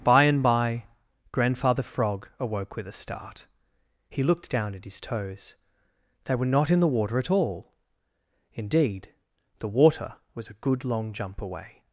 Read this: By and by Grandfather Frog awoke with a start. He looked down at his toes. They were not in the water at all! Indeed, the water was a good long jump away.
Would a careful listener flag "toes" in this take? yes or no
no